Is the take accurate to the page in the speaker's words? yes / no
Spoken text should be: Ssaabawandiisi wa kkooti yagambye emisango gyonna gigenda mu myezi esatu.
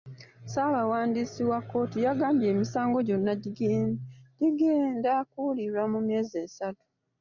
no